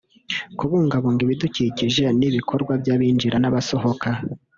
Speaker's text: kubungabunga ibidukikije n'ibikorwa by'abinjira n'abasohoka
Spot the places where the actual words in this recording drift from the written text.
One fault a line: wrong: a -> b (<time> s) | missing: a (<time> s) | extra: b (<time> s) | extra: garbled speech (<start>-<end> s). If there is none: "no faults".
no faults